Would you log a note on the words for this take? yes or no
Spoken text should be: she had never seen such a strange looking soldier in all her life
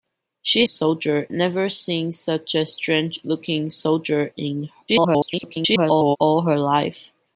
yes